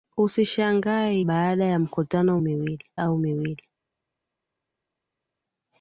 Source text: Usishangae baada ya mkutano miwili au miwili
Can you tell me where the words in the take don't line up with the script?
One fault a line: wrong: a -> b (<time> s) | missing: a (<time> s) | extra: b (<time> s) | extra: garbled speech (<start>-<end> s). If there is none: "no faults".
no faults